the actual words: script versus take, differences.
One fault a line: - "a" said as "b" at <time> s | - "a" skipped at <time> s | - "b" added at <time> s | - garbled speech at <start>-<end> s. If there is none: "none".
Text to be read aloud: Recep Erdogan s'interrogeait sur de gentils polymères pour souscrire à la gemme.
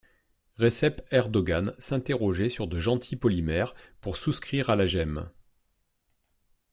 none